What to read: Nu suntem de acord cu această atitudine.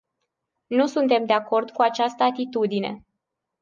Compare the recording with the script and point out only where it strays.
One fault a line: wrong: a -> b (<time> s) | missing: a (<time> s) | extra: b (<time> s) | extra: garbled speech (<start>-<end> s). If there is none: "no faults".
no faults